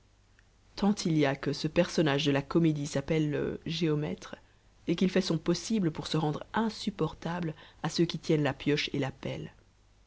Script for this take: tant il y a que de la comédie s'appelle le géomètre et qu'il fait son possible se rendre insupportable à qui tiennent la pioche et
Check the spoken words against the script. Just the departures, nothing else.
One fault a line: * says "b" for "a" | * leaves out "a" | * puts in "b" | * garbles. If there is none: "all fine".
* puts in "ce personnage"
* puts in "pour"
* puts in "ceux"